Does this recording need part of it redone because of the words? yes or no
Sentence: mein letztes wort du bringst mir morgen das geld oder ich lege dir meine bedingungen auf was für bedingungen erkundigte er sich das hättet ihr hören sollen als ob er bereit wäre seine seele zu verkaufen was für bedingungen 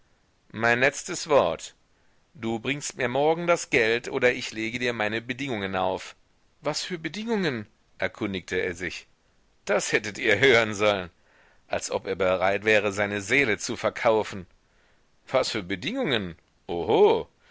no